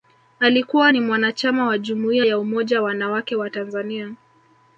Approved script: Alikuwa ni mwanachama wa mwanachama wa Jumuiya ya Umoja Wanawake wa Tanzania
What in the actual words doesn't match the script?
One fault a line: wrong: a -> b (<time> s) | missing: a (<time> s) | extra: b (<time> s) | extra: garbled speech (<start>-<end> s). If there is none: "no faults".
missing: mwanachama wa (1.8 s)